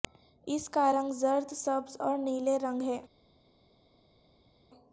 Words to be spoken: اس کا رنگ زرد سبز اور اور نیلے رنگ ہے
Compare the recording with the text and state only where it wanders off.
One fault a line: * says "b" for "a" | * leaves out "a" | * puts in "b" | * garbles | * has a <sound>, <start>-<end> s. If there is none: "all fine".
* leaves out "اور"